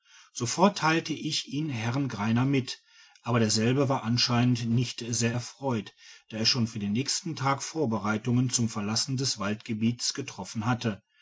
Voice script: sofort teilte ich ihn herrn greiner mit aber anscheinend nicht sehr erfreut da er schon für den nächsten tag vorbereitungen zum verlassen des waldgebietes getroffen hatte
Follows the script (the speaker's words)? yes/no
no